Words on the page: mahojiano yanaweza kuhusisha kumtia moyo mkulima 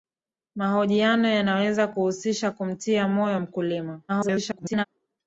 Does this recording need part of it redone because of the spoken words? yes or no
yes